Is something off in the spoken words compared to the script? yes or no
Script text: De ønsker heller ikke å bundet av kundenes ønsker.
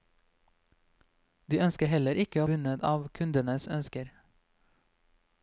no